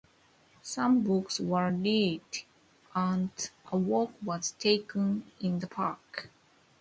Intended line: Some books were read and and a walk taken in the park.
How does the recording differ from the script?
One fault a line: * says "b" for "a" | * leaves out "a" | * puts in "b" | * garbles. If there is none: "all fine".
* leaves out "and"
* puts in "was"